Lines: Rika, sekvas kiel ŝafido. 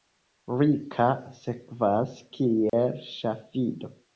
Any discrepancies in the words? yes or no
no